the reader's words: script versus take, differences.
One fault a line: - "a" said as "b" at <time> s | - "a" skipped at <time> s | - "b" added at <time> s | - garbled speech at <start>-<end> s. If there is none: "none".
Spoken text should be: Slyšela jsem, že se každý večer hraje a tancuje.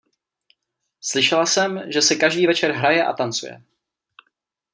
none